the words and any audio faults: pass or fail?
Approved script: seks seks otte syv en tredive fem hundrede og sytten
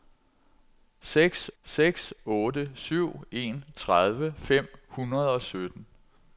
pass